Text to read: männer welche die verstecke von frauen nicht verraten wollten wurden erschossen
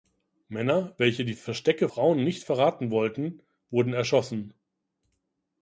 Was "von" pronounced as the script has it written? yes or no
no